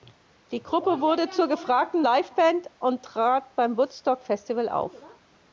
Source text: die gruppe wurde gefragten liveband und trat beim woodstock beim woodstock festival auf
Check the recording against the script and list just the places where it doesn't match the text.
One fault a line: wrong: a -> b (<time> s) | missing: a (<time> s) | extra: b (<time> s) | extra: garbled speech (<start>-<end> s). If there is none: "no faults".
extra: zur (1.3 s)
missing: beim woodstock (4.2 s)